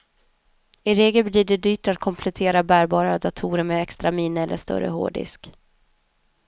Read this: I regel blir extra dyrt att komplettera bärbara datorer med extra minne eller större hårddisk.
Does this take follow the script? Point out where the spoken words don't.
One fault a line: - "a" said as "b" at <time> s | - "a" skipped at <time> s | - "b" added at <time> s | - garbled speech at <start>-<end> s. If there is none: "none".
- "extra" said as "det" at 1.4 s